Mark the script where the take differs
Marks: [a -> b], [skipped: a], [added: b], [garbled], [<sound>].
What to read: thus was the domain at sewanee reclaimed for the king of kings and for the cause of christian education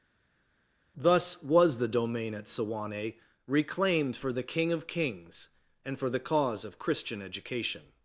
thus was the domain at sewanee reclaimed for the king of kings and for the cause of christian education